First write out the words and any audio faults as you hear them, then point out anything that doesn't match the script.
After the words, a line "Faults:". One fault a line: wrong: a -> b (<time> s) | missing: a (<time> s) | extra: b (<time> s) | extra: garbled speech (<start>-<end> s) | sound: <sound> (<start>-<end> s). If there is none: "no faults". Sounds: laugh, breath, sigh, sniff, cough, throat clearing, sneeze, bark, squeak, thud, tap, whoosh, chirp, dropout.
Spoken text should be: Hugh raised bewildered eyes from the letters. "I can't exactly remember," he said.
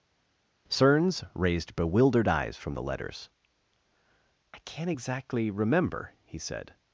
Cerns raised bewildered eyes from the letters. "I can't exactly remember," he said.
Faults:
wrong: Hugh -> Cerns (0.7 s)